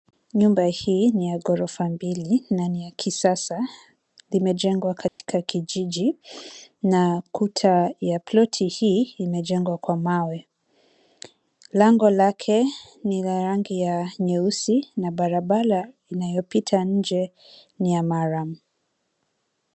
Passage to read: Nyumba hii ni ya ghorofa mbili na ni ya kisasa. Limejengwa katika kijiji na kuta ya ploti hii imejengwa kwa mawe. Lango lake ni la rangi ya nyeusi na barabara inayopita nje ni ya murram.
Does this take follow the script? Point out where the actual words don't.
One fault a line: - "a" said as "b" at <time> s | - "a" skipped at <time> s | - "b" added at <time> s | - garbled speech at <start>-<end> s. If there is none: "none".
none